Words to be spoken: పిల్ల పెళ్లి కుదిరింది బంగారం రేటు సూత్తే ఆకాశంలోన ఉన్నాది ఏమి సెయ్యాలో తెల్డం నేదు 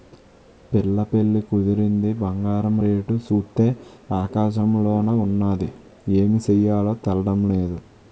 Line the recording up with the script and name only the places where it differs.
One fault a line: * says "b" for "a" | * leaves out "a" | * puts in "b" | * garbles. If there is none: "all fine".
all fine